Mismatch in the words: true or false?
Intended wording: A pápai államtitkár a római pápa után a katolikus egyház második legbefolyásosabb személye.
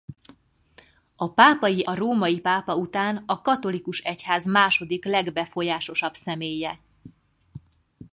true